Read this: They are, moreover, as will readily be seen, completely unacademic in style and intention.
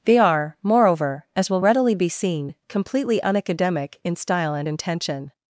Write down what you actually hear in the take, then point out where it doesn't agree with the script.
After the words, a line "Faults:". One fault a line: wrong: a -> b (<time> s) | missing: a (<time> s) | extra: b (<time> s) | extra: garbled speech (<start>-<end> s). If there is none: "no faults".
They are, moreover, as will readily be seen, completely unacademic in style and intention.
Faults:
no faults